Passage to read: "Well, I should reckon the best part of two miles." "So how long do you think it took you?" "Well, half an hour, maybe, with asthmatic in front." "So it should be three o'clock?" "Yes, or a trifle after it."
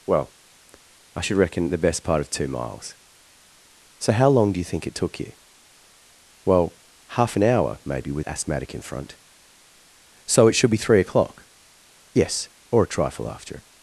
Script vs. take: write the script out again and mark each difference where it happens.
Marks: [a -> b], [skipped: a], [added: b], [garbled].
"Well, I should reckon the best part of two miles." "So how long do you think it took you?" "Well, half an hour, maybe, with asthmatic in front." "So it should be three o'clock?" "Yes, or a trifle after it."